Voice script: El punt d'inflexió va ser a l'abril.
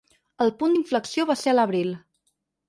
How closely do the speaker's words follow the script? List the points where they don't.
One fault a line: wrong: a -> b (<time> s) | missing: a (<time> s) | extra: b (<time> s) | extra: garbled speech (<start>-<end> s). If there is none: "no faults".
no faults